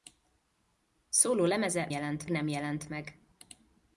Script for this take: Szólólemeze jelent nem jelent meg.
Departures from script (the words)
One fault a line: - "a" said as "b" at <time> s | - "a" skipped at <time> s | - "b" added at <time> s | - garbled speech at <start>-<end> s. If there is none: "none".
none